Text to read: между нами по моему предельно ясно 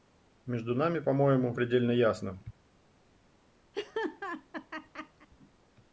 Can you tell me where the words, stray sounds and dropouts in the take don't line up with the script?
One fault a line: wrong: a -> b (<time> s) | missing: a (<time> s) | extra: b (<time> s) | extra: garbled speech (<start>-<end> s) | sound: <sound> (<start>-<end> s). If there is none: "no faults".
sound: laugh (3.7-5.3 s)